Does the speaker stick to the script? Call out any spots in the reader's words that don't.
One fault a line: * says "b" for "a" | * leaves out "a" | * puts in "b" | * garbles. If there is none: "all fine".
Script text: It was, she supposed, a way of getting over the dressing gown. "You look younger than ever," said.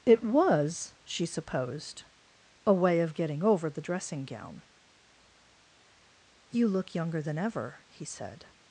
* puts in "he"